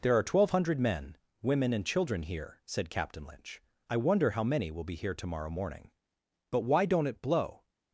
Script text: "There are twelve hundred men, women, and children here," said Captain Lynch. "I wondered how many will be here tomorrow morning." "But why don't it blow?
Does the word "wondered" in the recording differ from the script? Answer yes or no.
yes